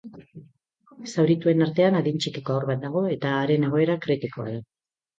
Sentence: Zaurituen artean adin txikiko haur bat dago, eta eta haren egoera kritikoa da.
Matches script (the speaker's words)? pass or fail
fail